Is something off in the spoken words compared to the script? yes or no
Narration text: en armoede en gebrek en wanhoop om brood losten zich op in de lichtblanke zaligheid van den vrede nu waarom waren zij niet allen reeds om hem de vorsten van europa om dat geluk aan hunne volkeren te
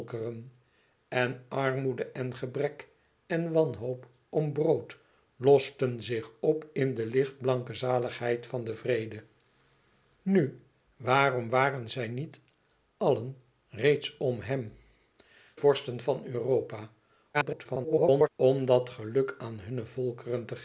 yes